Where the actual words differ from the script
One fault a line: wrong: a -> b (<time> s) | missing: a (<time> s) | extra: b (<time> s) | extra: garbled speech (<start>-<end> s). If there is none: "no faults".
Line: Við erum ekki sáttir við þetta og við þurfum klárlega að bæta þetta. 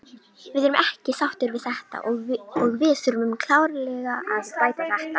no faults